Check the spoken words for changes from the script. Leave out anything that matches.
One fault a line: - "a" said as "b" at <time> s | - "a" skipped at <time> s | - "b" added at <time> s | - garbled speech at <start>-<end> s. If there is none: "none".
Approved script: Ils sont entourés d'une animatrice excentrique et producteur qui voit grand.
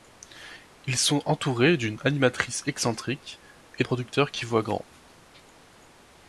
none